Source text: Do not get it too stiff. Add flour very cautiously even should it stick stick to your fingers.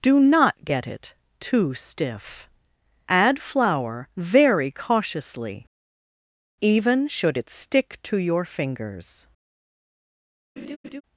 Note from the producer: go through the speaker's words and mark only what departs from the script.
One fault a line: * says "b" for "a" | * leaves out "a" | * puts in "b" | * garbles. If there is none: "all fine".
* leaves out "stick"